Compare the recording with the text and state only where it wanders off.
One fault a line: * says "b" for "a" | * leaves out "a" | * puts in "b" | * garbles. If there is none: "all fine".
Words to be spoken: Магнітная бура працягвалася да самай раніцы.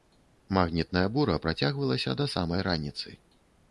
all fine